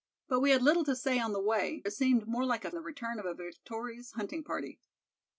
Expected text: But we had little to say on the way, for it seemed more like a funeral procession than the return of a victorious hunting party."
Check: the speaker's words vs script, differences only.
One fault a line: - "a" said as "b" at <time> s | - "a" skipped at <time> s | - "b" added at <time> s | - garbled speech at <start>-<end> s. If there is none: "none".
- "for" skipped at 1.9 s
- "funeral procession than" skipped at 2.7 s